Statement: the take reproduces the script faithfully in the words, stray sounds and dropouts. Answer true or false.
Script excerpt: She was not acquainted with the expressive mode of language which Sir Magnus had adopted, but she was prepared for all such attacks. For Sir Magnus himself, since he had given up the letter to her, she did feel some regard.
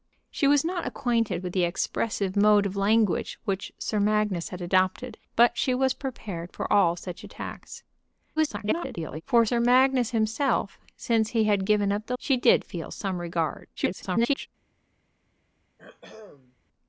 false